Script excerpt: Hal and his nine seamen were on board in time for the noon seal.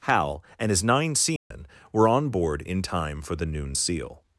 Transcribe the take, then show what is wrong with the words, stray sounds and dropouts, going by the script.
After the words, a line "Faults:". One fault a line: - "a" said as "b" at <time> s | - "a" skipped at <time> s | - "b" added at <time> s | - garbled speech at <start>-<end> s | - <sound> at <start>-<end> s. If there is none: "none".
Hal and his nine seamen were on board in time for the noon seal.
Faults:
- dropout at 1.4-1.5 s